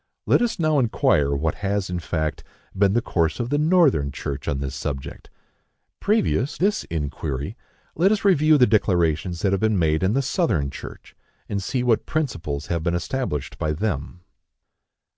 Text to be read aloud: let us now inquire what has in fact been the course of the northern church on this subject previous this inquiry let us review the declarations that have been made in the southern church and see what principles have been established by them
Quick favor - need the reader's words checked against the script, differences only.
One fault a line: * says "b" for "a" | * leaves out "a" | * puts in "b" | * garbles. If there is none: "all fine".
all fine